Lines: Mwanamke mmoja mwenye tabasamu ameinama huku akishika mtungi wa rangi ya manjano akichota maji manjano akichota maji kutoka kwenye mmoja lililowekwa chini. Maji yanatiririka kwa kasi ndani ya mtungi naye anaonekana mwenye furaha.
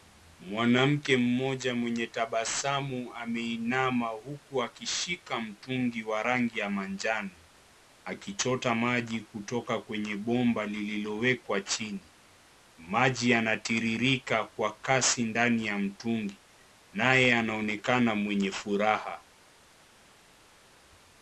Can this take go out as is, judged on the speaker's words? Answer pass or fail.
fail